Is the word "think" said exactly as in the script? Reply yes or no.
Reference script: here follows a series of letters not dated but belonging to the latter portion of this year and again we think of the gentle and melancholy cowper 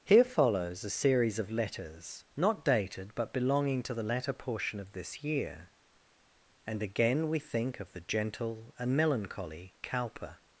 yes